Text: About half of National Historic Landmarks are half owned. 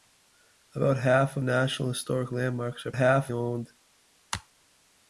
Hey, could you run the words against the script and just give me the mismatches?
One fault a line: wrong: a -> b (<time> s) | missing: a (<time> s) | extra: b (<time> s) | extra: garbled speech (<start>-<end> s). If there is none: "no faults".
no faults